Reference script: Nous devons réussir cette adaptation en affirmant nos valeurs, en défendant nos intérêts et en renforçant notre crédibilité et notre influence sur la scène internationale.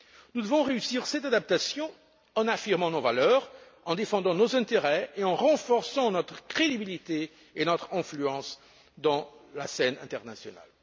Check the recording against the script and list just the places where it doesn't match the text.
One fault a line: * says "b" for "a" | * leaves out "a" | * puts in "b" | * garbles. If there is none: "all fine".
all fine